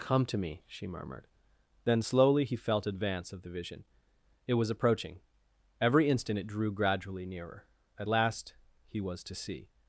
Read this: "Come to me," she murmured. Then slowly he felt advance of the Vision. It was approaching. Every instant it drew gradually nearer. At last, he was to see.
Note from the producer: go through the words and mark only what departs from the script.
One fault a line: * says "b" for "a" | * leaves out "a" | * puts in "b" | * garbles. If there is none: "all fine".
all fine